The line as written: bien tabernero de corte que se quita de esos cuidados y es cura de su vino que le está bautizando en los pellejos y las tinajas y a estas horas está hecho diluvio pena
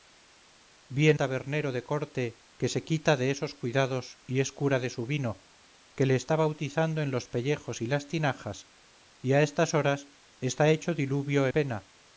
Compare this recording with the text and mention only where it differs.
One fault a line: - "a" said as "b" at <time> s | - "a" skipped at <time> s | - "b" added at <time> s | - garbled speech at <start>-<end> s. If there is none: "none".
none